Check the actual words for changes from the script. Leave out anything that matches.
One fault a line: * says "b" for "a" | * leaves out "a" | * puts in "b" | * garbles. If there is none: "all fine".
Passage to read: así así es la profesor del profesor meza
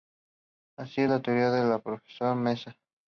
* leaves out "así"
* says "teoría" for "profesor"